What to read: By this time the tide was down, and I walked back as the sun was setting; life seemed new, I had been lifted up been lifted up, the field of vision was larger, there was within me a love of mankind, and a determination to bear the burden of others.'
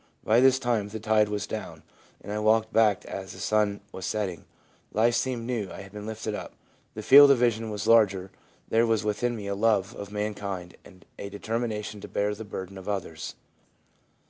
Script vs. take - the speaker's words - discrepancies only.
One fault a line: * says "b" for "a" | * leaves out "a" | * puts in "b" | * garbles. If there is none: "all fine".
* leaves out "been lifted up"